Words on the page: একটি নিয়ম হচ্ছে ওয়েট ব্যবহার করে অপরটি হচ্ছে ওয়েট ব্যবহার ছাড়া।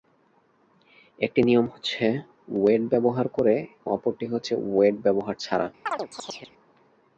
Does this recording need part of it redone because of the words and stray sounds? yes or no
yes